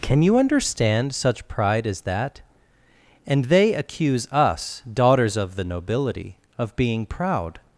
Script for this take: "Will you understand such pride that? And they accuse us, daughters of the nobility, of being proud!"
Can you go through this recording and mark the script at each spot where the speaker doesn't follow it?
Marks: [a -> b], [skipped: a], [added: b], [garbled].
["Will -> Can] you understand such pride [added: as] that? And they accuse us, daughters of the nobility, of being proud!"